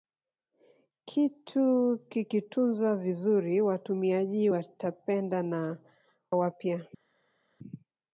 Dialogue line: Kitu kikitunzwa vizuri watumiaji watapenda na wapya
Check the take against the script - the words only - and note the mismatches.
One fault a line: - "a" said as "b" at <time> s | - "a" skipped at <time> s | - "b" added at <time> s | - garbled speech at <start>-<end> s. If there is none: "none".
none